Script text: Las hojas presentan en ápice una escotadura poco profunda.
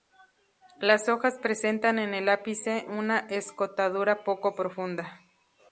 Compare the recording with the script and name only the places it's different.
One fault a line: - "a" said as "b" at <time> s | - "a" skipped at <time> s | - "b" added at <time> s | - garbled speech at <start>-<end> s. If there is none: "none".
- "el" added at 2.1 s